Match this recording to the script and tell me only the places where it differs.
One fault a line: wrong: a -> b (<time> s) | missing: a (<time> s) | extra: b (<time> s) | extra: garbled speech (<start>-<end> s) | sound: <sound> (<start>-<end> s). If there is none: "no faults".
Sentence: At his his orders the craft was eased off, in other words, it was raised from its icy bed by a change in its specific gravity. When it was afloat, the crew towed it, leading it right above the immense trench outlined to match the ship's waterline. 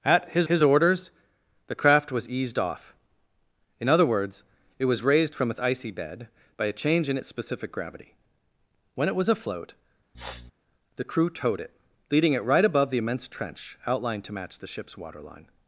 sound: sniff (10.1-10.5 s)